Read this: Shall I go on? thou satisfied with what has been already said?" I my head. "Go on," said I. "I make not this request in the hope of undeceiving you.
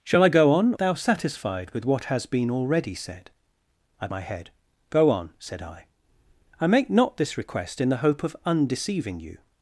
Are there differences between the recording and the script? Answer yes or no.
no